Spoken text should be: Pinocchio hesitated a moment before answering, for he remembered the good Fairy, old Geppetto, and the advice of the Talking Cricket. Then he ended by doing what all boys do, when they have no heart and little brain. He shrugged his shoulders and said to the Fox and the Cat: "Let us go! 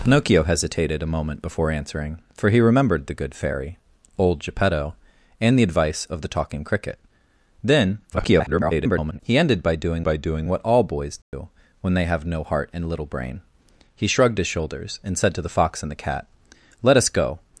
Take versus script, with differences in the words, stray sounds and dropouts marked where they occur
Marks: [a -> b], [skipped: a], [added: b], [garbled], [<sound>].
Pinocchio hesitated a moment before answering, for he remembered the good Fairy, old Geppetto, and the advice of the Talking Cricket. Then [garbled] he ended by doing [added: by doing] what all boys do, [dropout] when they have no heart and little brain. He shrugged his shoulders and said to the Fox and the Cat: "Let us go!